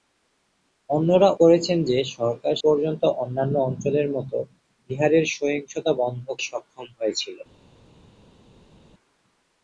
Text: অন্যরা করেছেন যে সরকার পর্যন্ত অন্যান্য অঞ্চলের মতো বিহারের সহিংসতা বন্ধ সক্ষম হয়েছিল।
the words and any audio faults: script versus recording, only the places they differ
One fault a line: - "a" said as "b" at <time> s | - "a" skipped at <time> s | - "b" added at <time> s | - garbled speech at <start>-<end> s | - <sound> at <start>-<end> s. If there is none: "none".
none